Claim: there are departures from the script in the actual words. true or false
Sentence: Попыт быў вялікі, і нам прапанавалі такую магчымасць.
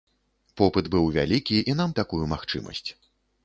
true